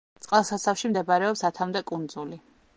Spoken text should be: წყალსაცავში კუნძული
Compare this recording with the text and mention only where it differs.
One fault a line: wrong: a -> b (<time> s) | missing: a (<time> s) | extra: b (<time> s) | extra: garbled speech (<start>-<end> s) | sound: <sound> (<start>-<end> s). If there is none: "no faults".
extra: მდებარეობს ათამდე (0.9 s)